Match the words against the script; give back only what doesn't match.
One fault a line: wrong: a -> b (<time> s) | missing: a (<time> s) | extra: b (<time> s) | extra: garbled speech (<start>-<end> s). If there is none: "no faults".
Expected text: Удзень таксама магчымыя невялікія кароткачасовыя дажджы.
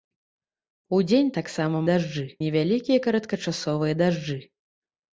wrong: магчымыя -> дажджы (1.9 s)